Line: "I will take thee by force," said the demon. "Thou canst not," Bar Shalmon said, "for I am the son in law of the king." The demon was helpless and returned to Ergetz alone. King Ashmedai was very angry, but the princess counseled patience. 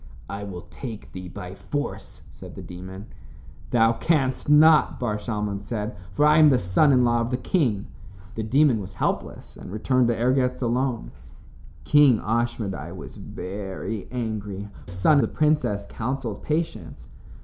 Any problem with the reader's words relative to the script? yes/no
yes